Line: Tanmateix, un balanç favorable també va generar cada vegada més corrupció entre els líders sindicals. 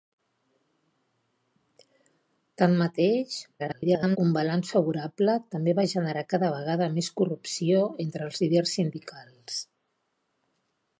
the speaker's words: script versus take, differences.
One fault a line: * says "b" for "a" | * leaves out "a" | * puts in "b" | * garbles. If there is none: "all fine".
* garbles